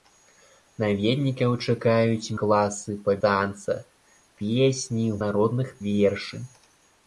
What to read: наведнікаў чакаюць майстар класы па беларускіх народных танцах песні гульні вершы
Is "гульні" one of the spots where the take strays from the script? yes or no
yes